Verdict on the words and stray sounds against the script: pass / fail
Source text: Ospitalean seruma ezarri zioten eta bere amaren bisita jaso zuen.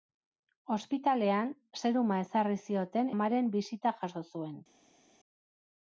fail